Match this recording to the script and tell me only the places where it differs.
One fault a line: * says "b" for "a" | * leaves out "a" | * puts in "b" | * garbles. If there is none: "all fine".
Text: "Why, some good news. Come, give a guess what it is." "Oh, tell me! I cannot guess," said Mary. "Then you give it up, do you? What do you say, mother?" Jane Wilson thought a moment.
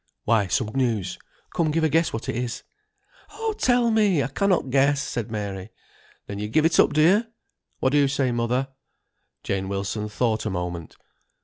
* leaves out "good"